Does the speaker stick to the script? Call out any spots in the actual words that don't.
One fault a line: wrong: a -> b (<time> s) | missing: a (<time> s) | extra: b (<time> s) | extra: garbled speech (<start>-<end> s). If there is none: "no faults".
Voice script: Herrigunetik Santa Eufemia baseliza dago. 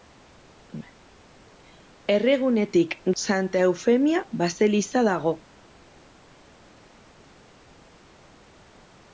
no faults